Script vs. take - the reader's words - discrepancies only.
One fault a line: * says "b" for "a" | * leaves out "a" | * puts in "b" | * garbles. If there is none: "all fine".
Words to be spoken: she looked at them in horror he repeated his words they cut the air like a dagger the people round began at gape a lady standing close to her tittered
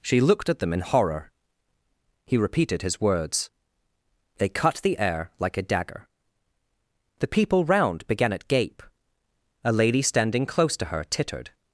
all fine